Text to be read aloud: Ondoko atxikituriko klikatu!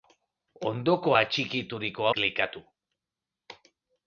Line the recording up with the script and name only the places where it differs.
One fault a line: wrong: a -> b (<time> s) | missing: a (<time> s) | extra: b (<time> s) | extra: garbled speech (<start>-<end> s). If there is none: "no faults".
no faults